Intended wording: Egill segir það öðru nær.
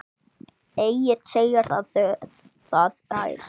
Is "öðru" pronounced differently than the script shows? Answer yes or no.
yes